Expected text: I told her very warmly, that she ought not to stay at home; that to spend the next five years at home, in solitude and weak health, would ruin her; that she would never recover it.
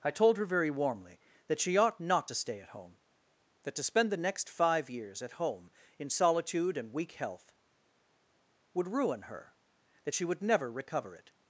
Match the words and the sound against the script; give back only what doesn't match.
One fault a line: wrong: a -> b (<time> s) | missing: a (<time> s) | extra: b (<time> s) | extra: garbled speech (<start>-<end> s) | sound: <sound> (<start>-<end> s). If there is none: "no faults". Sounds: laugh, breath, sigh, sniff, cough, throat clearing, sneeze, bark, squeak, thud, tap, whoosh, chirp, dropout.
no faults